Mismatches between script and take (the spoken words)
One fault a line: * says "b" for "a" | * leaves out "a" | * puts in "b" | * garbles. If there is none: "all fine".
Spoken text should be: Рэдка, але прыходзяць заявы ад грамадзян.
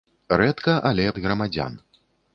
* leaves out "прыходзяць заявы"